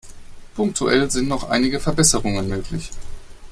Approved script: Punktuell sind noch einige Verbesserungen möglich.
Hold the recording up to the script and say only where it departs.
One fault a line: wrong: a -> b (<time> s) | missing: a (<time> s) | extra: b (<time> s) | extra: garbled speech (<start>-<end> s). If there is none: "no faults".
no faults